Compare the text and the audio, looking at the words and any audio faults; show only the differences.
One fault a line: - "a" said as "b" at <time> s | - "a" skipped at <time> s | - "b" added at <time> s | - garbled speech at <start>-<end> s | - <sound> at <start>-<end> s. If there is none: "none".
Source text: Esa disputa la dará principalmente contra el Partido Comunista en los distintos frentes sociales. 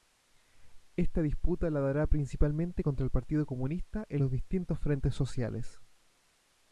- "Esa" said as "Esta" at 1.0 s